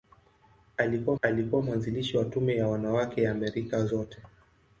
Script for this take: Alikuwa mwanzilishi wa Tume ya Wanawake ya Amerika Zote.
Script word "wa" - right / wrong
right